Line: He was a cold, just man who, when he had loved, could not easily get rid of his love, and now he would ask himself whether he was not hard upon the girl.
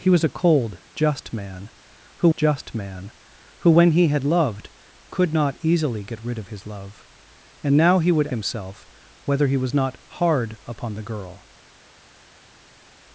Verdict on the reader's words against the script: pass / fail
fail